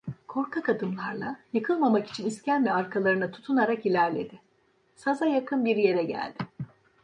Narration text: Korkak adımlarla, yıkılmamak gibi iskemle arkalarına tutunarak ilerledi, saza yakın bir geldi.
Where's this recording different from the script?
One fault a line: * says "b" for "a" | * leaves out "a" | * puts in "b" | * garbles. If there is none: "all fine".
* says "için" for "gibi"
* puts in "yere"